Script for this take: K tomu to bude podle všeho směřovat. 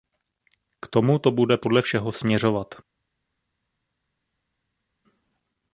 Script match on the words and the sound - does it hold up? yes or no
yes